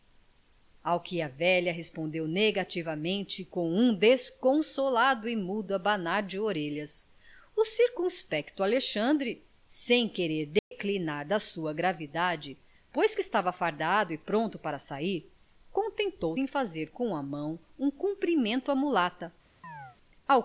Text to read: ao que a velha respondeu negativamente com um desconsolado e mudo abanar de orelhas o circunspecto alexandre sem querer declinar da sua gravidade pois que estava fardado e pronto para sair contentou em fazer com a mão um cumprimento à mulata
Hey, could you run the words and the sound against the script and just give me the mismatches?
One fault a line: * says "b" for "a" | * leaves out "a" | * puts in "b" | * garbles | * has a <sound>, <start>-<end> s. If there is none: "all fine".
* has a dropout, 10.6-10.7 s
* has a chirp, 19.6-20.0 s